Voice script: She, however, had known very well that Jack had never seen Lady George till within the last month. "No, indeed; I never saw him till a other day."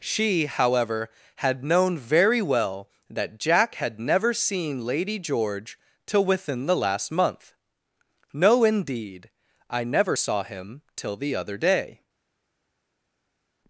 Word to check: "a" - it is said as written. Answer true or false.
false